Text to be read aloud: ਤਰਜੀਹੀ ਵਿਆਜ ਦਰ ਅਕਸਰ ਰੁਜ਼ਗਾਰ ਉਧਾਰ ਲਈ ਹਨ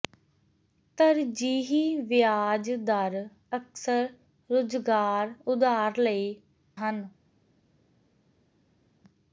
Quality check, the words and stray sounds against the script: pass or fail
pass